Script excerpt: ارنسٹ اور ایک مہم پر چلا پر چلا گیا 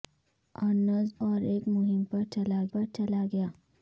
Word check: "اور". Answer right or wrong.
right